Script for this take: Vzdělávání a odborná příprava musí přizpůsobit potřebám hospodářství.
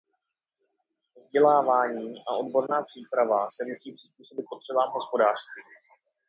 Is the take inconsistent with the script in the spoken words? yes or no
yes